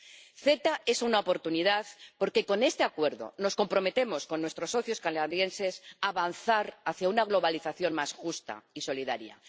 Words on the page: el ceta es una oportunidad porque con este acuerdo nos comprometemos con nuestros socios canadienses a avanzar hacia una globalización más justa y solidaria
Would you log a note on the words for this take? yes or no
no